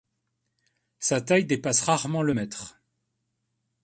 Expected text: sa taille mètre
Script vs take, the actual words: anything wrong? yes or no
yes